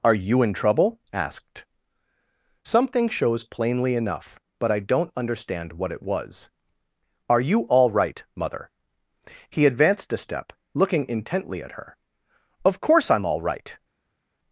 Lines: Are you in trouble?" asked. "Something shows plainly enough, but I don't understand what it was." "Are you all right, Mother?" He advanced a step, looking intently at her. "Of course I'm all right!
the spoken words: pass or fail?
pass